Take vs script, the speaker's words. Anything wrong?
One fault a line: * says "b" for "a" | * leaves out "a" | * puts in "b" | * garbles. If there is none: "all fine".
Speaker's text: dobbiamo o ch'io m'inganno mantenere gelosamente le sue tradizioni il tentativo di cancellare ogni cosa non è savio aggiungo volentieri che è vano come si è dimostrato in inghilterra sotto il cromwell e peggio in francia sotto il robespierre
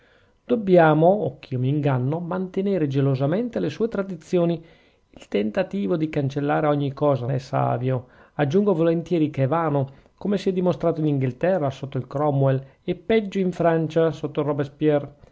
* leaves out "non"